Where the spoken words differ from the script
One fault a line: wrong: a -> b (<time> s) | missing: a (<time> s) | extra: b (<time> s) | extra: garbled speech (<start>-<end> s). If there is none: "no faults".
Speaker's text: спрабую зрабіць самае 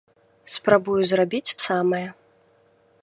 no faults